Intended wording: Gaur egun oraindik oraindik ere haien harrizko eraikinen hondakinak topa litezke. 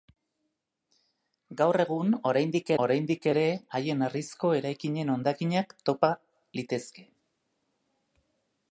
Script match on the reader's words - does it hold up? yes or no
yes